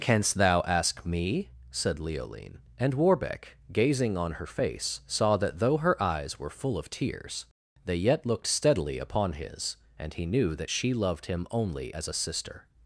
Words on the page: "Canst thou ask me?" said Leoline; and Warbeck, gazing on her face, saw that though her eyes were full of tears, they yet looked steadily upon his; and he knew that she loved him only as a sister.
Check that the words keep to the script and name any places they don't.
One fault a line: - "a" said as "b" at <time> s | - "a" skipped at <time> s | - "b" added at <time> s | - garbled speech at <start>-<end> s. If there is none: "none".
none